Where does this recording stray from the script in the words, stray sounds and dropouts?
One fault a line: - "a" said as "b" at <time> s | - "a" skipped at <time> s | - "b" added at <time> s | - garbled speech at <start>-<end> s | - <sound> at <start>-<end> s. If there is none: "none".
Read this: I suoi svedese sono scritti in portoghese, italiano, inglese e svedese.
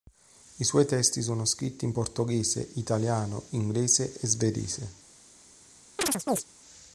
- "svedese" said as "testi" at 0.9 s
- chirp at 6.0-6.4 s